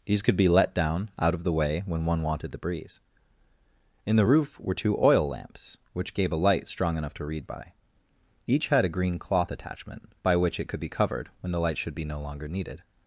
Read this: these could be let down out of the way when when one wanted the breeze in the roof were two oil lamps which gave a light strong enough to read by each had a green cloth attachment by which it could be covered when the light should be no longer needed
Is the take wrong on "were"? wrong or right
right